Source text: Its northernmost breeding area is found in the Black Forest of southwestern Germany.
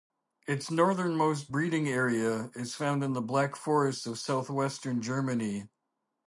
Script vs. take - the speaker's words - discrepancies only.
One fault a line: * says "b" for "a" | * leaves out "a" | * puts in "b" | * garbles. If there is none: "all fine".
all fine